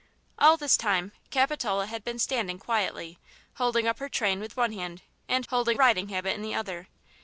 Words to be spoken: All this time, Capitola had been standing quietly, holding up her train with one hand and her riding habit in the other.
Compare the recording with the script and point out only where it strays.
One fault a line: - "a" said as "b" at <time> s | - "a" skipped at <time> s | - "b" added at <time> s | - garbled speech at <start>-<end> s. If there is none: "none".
- "her" said as "holding" at 5.5 s